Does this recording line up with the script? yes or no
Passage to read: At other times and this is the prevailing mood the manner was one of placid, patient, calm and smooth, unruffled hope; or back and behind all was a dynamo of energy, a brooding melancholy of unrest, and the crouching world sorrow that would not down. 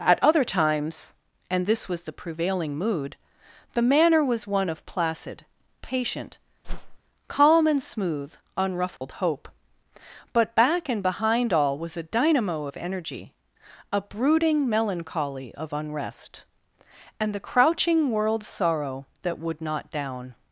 no